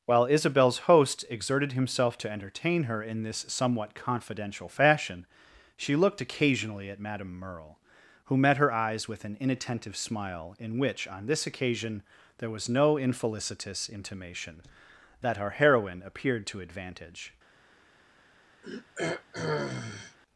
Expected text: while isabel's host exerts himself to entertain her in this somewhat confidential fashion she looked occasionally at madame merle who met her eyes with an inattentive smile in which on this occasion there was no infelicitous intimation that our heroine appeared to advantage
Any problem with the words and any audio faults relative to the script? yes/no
yes